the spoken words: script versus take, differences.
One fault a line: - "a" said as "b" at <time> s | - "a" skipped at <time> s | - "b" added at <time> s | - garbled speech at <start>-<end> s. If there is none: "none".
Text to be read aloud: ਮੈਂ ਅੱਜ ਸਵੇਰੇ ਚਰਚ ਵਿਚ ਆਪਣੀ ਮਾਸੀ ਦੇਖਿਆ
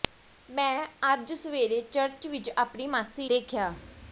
none